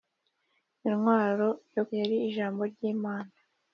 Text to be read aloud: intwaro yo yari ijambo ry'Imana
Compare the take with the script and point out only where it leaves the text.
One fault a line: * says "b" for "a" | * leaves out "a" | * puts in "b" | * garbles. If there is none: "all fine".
all fine